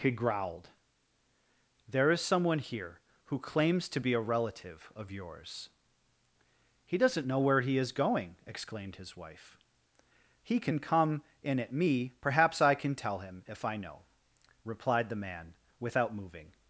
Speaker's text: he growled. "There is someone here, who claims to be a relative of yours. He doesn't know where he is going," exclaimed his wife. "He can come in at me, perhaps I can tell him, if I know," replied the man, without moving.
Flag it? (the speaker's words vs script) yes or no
no